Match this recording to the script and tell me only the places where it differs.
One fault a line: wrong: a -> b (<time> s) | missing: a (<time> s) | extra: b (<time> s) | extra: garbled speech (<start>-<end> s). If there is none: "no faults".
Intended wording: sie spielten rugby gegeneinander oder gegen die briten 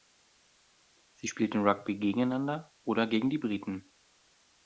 no faults